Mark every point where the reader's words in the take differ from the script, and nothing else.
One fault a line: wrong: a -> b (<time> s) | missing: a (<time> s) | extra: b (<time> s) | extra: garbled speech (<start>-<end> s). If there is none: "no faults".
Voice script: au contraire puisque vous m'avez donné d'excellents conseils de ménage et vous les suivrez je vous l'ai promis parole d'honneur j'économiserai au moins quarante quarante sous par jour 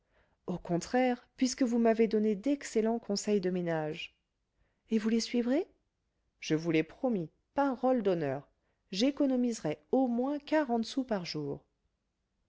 missing: quarante (10.8 s)